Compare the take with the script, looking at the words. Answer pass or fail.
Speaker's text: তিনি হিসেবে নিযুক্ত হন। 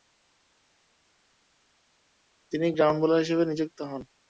fail